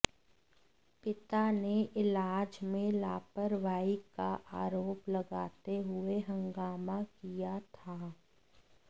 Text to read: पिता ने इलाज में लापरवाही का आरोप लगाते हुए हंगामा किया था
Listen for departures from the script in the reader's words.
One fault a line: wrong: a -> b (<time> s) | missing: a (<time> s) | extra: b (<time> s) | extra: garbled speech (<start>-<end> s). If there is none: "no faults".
no faults